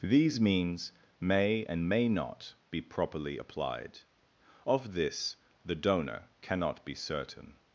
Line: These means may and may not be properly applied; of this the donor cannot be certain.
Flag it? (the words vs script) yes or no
no